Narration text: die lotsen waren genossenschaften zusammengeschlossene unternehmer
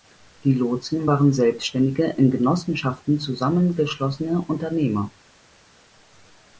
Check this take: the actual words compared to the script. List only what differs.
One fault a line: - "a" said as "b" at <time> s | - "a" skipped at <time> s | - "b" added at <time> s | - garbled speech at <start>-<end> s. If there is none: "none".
- "selbständige in" added at 1.3 s